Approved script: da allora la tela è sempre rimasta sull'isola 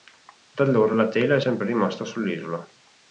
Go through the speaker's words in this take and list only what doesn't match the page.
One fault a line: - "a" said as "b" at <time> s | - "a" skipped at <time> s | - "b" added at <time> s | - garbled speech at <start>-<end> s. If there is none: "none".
none